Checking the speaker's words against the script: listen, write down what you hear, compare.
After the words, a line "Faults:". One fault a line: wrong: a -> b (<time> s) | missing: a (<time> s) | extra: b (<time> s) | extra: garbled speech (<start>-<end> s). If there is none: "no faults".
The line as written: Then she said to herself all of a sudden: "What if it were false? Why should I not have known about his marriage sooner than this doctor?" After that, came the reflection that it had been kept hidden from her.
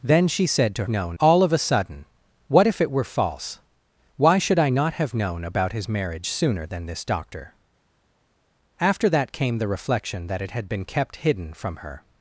Then she said to known all of a sudden: "What if it were false? Why should I not have known about his marriage sooner than this doctor?" After that, came the reflection that it had been kept hidden from her.
Faults:
wrong: herself -> known (0.9 s)